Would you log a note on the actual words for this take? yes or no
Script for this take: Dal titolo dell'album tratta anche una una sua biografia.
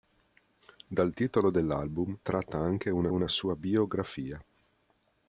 no